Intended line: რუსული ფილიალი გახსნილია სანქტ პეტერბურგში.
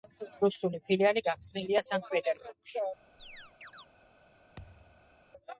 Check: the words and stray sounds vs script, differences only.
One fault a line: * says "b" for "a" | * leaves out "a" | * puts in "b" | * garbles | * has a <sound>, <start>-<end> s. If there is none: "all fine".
* has a chirp, 3.2-3.9 s
* has a thud, 4.6-5.2 s